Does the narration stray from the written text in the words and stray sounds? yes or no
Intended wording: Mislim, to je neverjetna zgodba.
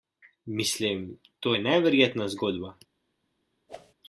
yes